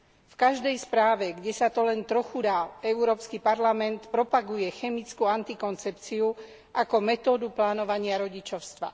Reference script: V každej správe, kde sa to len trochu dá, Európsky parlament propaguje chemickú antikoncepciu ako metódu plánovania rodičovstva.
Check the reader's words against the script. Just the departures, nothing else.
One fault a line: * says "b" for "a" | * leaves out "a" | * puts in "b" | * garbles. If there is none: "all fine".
all fine